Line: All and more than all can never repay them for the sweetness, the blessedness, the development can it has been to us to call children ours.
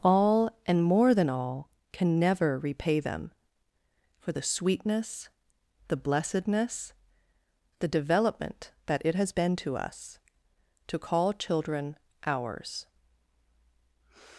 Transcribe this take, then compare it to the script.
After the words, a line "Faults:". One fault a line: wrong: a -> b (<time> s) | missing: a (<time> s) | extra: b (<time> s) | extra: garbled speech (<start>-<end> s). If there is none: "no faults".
All and more than all can never repay them for the sweetness, the blessedness, the development that it has been to us to call children ours.
Faults:
wrong: can -> that (8.9 s)